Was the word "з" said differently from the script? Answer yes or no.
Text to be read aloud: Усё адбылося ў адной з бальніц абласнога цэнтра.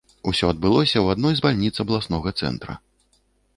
no